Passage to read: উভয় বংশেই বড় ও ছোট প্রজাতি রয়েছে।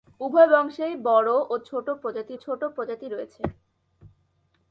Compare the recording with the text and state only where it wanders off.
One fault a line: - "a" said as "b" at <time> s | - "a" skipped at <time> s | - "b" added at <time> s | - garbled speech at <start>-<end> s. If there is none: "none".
- "ছোট প্রজাতি" added at 2.4 s